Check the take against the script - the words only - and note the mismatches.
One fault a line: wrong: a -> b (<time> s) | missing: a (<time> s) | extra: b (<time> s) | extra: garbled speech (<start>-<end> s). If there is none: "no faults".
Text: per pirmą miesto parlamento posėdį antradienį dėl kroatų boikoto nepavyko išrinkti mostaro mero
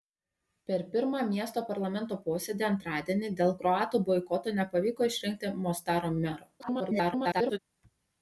extra: garbled speech (6.6-7.6 s)